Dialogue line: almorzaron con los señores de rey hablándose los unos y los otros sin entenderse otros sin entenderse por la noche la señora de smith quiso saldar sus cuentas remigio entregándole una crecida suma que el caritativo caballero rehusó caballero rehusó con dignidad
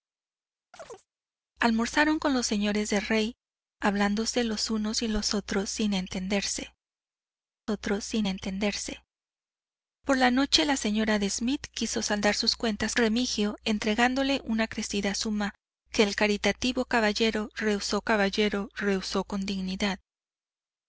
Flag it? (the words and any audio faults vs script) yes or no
yes